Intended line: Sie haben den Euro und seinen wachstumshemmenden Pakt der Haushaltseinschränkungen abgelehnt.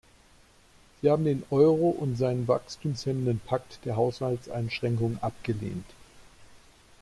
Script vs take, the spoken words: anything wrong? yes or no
no